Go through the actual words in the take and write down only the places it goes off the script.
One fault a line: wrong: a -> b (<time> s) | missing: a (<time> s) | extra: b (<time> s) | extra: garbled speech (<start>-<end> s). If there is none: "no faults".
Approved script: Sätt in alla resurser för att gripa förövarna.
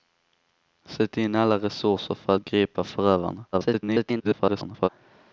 extra: garbled speech (3.5-4.9 s)